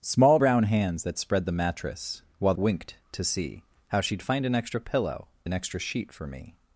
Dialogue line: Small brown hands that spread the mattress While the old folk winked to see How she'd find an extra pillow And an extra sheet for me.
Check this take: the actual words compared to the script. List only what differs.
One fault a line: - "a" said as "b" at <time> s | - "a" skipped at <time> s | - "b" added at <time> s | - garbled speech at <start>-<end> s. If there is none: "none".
- "the old folk" skipped at 2.5 s
- "And" skipped at 5.3 s